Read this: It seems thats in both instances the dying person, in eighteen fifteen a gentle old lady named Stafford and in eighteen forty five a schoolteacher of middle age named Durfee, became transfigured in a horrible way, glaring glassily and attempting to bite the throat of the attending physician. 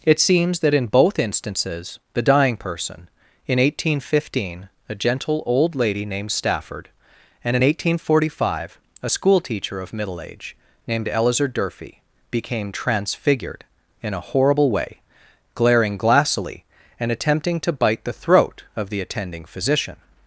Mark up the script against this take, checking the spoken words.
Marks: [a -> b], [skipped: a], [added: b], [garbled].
It seems [thats -> that] in both instances the dying person, in eighteen fifteen a gentle old lady named Stafford and in eighteen forty five a schoolteacher of middle age named [added: Eleazar] Durfee, became transfigured in a horrible way, glaring glassily and attempting to bite the throat of the attending physician.